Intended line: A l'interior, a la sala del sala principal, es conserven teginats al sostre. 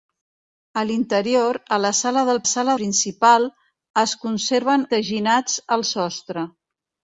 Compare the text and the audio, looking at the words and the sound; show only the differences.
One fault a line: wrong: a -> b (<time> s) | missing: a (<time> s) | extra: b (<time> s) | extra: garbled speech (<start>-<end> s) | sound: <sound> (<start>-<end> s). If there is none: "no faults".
no faults